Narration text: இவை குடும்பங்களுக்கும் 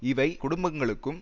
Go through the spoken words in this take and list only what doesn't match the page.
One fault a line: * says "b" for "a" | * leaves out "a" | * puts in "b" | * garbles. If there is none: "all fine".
all fine